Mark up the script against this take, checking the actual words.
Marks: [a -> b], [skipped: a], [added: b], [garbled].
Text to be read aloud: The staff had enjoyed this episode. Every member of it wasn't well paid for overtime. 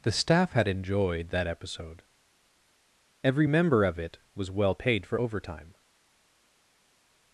The staff had enjoyed [this -> that] episode. Every member of it [wasn't -> was] well paid for overtime.